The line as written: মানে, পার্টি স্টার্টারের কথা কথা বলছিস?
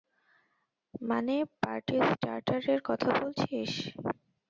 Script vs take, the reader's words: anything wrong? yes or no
yes